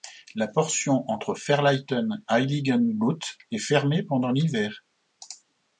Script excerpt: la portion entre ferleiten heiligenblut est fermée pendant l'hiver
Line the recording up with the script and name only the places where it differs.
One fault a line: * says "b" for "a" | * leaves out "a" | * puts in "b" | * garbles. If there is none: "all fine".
all fine